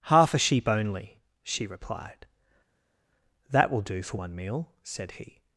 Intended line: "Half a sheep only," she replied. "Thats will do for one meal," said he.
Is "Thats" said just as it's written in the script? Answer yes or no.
no